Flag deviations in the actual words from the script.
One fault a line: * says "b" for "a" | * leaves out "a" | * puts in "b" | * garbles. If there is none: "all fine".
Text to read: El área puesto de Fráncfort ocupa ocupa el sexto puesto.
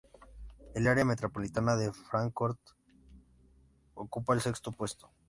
* says "metropolitana" for "puesto"
* leaves out "ocupa"